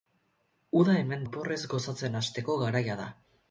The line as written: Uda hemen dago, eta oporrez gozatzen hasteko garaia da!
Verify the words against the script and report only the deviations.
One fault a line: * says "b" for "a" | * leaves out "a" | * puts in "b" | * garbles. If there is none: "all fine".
* leaves out "dago eta"